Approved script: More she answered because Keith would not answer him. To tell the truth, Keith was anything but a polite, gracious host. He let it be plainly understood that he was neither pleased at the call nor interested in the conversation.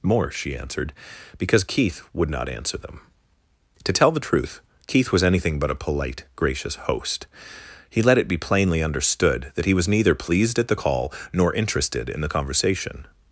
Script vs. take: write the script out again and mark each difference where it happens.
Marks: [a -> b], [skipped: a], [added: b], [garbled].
More she answered because Keith would not answer [him. -> them] To tell the truth, Keith was anything but a polite, gracious host. He let it be plainly understood that he was neither pleased at the call nor interested in the conversation.